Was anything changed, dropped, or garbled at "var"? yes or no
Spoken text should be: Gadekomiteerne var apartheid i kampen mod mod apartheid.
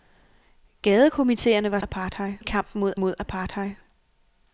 no